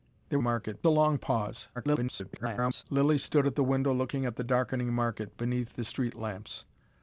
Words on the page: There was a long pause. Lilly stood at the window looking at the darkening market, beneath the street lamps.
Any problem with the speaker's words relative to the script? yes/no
yes